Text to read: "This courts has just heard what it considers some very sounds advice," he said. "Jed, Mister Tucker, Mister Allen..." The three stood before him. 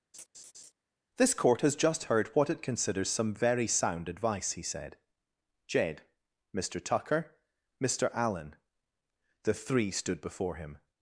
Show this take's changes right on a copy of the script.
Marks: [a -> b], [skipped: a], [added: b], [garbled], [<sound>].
[laugh] "This [courts -> court] has just heard what it considers some very [sounds -> sound] advice," he said. "Jed, Mister Tucker, Mister Allen..." The three stood before him.